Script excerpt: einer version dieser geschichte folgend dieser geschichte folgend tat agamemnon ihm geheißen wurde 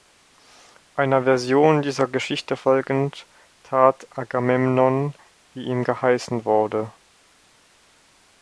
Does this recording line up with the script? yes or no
no